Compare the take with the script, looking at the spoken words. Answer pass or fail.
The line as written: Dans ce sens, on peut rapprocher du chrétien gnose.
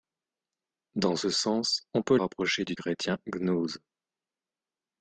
pass